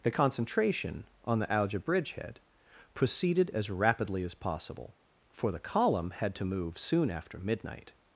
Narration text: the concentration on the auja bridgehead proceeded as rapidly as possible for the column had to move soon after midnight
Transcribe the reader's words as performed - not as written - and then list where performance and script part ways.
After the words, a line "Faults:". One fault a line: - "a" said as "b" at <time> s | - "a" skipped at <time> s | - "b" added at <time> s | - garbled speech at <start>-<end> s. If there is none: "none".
the concentration on the auja bridgehead proceeded as rapidly as possible for the column had to move soon after midnight
Faults:
none